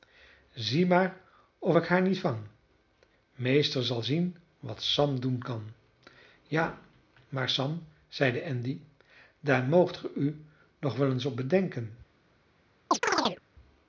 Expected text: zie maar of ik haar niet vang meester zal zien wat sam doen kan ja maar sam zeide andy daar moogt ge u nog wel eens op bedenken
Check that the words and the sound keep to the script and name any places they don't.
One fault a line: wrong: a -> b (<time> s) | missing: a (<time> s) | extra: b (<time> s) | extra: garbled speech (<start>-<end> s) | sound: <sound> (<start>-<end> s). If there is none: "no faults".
sound: chirp (12.9-13.4 s)